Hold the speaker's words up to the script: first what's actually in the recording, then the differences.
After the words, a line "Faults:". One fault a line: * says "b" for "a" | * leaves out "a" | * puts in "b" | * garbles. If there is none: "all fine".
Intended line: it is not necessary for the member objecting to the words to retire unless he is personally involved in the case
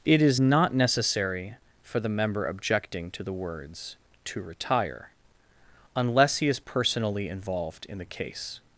it is not necessary for the member objecting to the words to retire unless he is personally involved in the case
Faults:
all fine